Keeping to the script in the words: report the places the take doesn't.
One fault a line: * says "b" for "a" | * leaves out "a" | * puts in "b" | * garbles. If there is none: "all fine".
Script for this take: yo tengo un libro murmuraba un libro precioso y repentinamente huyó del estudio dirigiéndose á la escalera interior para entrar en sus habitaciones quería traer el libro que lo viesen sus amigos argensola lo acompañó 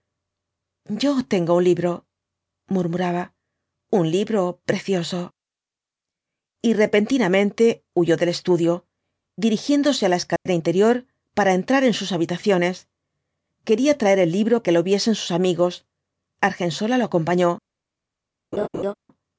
all fine